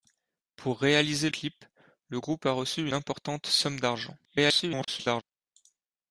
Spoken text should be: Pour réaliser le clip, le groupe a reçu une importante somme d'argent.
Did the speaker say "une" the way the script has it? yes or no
no